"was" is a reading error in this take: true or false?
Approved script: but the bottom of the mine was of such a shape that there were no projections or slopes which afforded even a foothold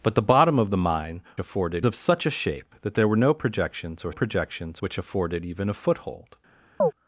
true